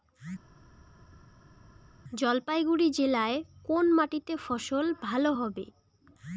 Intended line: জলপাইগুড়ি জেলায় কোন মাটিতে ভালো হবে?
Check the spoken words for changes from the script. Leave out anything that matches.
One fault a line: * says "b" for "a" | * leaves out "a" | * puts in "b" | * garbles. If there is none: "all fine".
* puts in "ফসল"